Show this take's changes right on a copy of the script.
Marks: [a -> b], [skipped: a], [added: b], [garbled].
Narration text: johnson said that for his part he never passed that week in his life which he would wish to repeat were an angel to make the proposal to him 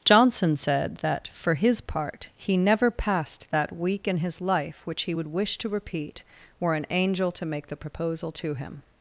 johnson said that for his part he never passed that week in his life which he would wish to repeat were an angel to make the proposal to him